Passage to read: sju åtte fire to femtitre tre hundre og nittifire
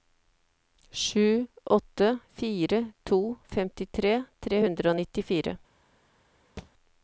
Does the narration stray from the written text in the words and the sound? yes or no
yes